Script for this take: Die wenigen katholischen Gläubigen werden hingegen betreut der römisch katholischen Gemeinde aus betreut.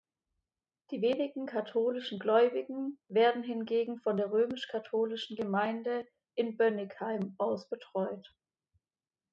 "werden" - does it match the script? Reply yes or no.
yes